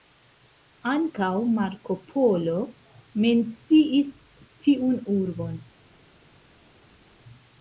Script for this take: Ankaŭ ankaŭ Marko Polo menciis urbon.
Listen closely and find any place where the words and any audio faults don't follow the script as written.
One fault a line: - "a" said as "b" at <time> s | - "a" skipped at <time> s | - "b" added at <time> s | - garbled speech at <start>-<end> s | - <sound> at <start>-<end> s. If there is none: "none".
- "ankaŭ" skipped at 1.3 s
- "tiun" added at 4.7 s